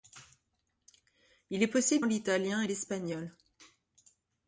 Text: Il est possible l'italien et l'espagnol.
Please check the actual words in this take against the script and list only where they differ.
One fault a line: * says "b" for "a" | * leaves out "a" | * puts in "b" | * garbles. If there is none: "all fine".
all fine